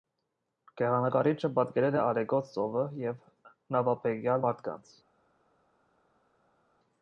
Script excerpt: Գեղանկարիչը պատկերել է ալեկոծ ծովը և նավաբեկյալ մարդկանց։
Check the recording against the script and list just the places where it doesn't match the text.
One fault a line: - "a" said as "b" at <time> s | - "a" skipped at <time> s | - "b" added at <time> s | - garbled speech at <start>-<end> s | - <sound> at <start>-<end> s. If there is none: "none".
none